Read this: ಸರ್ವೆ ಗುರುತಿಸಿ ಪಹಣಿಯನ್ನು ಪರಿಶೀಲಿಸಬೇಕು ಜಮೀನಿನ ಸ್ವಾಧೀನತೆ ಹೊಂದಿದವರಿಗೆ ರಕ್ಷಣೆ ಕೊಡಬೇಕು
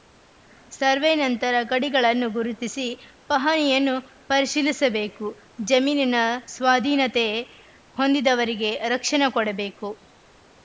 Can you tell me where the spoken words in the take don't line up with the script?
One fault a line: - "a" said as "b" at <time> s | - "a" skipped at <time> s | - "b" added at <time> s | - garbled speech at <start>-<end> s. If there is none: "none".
- "ನಂತರ ಗಡಿಗಳನ್ನು" added at 1.2 s